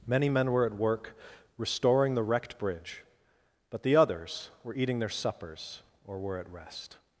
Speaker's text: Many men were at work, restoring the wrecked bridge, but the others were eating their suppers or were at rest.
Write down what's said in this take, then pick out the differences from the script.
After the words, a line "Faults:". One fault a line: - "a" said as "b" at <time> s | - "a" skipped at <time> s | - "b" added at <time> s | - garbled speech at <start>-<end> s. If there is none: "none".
Many men were at work, restoring the wrecked bridge, but the others were eating their suppers or were at rest.
Faults:
none